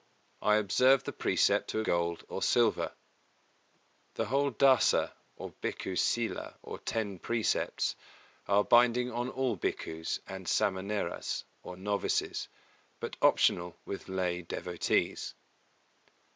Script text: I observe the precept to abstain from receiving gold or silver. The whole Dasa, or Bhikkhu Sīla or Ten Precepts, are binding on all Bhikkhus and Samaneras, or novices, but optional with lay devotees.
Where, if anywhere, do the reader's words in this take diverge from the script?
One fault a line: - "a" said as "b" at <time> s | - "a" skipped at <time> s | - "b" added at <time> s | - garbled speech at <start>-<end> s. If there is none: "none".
- "abstain from receiving" skipped at 1.8 s